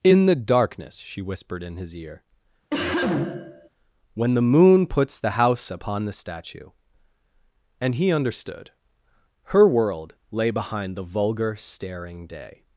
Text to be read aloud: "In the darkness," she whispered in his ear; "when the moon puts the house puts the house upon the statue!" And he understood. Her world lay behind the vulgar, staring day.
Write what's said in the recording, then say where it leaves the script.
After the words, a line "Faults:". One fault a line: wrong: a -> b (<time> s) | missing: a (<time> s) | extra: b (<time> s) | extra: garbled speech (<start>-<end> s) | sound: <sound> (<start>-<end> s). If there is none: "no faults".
"In the darkness," she whispered in his ear; "when the moon puts the house upon the statue!" And he understood. Her world lay behind the vulgar, staring day.
Faults:
sound: cough (2.7-3.7 s)
missing: puts the house (5.7 s)